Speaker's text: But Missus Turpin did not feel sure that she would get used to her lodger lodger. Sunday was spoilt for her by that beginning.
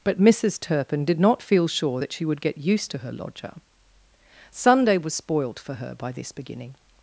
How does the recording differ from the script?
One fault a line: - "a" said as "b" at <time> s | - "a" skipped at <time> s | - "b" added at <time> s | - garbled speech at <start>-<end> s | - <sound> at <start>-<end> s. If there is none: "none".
- "lodger" skipped at 3.5 s
- "that" said as "this" at 6.1 s